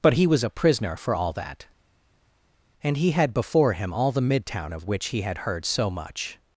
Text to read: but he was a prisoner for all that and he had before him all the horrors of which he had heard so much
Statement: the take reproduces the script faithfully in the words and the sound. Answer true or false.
false